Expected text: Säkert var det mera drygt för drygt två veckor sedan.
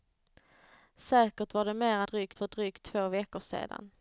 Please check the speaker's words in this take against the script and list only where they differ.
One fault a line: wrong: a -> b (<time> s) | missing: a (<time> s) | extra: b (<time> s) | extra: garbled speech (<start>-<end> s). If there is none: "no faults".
no faults